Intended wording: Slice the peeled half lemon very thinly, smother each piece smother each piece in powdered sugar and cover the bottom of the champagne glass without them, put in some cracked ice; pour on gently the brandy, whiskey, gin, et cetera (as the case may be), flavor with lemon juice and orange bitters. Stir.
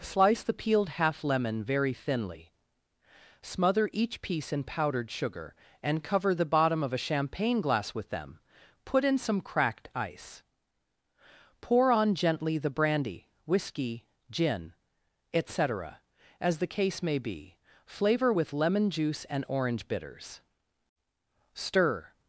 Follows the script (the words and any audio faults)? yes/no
no